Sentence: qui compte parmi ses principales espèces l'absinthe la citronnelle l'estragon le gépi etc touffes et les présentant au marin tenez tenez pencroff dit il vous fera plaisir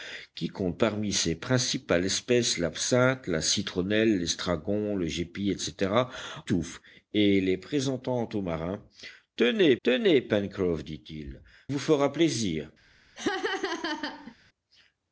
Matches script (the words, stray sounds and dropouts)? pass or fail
fail